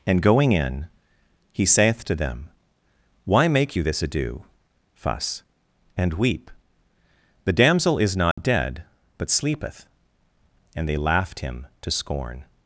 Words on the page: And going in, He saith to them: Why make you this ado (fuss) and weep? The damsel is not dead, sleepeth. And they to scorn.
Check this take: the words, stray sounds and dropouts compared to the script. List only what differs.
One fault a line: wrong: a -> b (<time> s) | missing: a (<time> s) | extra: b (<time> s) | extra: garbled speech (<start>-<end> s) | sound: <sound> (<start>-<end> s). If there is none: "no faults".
sound: dropout (8.3-8.4 s)
extra: but (9.2 s)
extra: laughed Him (10.9 s)